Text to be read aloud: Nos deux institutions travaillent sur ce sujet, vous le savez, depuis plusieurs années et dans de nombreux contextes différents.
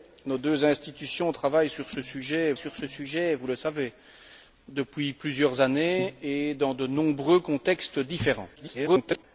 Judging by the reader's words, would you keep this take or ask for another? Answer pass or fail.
fail